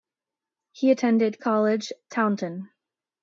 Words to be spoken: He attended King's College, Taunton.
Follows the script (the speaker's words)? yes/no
no